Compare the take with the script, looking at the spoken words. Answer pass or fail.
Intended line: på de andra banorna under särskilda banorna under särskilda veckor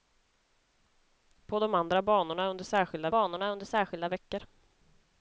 pass